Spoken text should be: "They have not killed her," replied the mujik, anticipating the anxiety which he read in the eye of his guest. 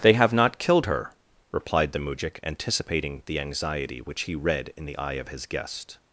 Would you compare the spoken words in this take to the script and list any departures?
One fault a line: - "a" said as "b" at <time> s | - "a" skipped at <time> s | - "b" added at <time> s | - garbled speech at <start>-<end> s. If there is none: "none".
none